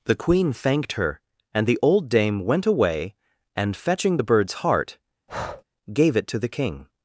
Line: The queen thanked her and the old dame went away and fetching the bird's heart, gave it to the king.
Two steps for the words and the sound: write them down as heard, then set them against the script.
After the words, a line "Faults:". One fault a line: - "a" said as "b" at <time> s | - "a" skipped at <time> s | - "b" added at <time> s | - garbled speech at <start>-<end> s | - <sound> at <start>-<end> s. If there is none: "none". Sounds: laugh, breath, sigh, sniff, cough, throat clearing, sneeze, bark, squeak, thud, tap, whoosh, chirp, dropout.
The queen thanked her and the old dame went away and fetching the bird's heart, gave it to the king.
Faults:
- breath at 5.3-5.6 s